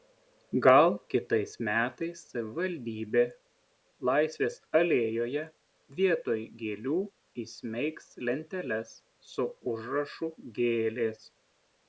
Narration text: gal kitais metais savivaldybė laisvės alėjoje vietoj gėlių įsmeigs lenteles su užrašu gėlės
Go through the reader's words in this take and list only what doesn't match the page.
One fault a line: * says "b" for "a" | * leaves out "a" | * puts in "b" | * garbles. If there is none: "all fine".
all fine